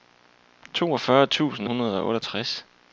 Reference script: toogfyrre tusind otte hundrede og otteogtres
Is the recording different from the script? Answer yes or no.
yes